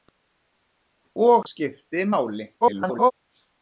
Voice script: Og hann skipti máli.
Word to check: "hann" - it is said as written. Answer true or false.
false